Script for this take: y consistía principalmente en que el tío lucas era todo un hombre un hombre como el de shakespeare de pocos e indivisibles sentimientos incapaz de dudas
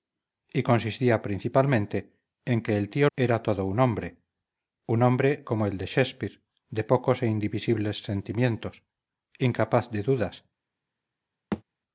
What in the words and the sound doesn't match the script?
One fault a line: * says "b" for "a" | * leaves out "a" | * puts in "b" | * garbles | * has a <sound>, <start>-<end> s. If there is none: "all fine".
* leaves out "lucas"
* has a thud, 11.5-11.6 s